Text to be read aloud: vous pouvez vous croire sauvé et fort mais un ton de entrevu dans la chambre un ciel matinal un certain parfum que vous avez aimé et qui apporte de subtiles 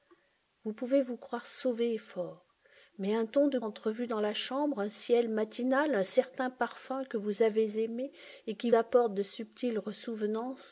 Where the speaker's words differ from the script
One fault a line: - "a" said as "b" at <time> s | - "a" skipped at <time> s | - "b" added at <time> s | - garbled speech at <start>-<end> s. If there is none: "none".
none